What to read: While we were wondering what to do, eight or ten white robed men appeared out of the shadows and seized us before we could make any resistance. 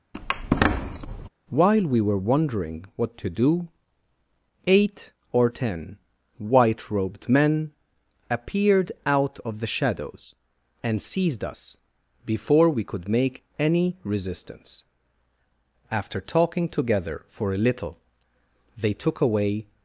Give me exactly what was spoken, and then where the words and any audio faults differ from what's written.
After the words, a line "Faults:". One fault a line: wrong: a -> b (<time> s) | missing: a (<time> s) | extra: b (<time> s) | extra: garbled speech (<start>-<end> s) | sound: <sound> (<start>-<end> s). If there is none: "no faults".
While we were wondering what to do, eight or ten white robed men appeared out of the shadows and seized us before we could make any resistance. After talking together for a little they took away
Faults:
sound: squeak (0.1-1.3 s)
extra: After talking together for a little they took away (15.9 s)